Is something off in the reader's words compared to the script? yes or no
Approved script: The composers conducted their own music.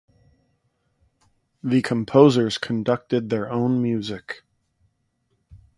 no